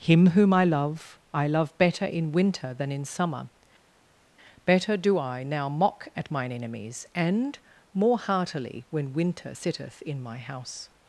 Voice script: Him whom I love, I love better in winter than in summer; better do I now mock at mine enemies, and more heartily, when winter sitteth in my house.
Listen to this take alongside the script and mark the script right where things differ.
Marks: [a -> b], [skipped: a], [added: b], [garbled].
Him whom I love, I love better in winter than in summer; better do I now mock at mine enemies, and more heartily, when winter sitteth in my house.